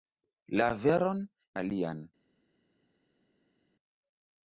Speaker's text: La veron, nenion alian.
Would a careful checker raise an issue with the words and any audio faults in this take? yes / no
yes